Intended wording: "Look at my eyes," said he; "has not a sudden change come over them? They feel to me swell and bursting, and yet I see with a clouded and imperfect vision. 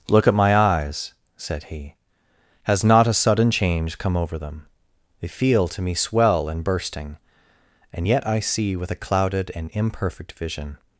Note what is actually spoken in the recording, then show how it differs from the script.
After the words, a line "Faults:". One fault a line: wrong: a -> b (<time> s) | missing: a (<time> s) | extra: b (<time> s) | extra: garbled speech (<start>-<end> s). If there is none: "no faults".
"Look at my eyes," said he; "has not a sudden change come over them? They feel to me swell and bursting, and yet I see with a clouded and imperfect vision.
Faults:
no faults